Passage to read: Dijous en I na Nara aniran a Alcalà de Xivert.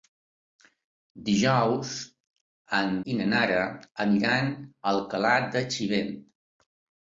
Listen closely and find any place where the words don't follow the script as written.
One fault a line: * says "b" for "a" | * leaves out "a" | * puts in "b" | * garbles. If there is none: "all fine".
all fine